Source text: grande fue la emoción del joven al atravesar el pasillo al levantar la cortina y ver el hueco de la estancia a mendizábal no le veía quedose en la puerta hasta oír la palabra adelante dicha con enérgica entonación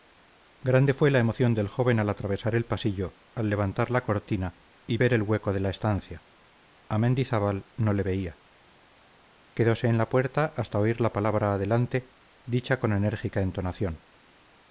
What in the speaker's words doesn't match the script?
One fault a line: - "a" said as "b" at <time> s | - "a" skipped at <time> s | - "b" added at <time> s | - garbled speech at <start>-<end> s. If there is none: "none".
none